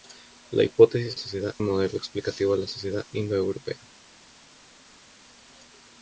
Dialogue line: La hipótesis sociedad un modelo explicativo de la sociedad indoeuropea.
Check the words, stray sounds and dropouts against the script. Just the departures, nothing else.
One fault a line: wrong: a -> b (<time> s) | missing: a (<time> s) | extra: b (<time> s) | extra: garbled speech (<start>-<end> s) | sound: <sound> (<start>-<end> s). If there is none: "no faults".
no faults